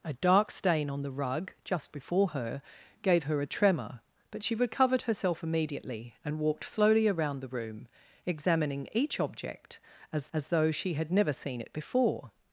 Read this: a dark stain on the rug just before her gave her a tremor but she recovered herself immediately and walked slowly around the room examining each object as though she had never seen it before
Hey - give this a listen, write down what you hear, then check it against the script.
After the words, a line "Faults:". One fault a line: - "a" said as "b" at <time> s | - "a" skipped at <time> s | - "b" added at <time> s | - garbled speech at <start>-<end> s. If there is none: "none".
a dark stain on the rug just before her gave her a tremor but she recovered herself immediately and walked slowly around the room examining each object as as though she had never seen it before
Faults:
- "as" added at 10.3 s